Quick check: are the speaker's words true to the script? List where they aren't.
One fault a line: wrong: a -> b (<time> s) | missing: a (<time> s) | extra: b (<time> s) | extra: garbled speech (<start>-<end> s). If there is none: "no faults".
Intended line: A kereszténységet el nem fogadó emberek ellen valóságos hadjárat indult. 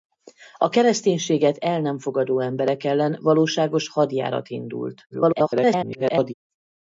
extra: garbled speech (5.1-6.3 s)